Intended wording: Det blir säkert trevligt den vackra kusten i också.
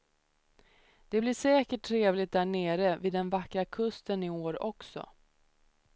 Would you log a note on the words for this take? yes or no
yes